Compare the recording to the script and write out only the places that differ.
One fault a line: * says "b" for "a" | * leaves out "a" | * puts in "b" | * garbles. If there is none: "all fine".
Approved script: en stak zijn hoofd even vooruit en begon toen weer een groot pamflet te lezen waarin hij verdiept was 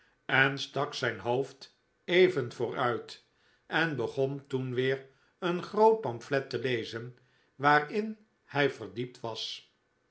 all fine